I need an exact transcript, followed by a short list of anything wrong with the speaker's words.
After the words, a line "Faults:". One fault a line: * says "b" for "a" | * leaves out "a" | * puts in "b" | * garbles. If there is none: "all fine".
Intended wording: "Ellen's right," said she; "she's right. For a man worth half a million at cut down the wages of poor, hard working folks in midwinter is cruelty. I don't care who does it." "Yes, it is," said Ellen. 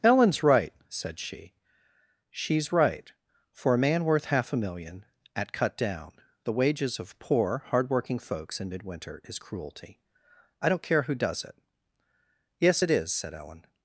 "Ellen's right," said she; "she's right. For a man worth half a million at cut down the wages of poor, hard working folks in midwinter is cruelty. I don't care who does it." "Yes, it is," said Ellen.
Faults:
all fine